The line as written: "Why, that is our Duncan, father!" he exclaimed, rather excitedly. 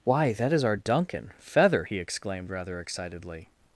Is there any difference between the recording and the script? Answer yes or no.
yes